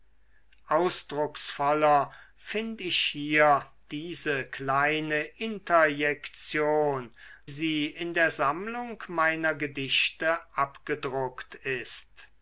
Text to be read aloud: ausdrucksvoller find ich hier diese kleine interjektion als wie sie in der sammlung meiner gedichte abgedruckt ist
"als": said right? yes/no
no